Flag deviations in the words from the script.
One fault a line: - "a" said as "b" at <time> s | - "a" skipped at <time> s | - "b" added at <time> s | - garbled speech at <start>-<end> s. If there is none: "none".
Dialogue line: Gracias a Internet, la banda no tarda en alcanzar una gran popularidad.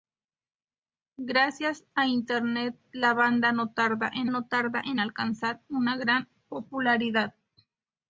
- "no tarda en" added at 4.3 s